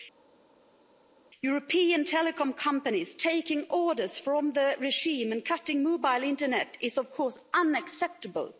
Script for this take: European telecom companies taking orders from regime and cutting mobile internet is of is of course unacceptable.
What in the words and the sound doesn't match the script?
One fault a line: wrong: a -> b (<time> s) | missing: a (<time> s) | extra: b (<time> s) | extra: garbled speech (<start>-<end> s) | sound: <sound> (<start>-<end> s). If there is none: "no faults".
extra: the (4.5 s)
missing: is of (7.1 s)